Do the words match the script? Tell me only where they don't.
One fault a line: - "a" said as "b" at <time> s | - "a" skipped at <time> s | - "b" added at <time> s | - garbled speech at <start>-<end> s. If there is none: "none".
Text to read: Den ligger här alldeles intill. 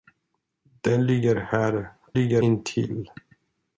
- "alldeles" said as "ligger" at 2.1 s